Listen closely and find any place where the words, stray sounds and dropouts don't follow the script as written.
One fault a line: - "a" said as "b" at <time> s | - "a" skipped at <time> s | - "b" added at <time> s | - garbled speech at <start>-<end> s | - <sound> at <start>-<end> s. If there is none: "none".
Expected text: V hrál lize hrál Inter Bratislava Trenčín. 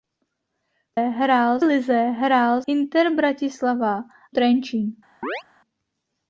- chirp at 5.2-5.4 s